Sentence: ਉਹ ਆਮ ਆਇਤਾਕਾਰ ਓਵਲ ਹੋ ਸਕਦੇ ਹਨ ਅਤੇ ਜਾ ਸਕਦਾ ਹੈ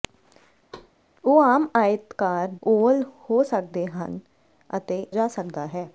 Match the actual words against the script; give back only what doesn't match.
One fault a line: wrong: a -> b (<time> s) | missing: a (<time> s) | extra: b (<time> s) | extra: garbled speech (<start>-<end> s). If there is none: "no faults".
no faults